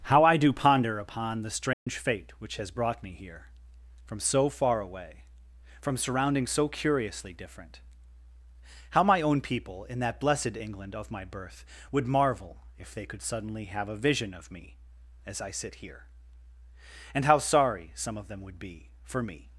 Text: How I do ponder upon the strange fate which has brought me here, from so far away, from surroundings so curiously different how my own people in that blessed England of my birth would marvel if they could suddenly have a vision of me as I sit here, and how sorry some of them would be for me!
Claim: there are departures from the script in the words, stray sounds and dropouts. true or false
true